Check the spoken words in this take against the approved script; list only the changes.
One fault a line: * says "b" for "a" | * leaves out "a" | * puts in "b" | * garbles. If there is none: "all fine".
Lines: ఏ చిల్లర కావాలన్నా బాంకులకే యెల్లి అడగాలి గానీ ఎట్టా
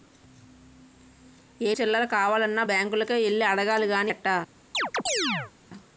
all fine